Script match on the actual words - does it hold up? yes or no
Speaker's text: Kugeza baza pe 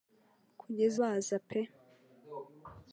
yes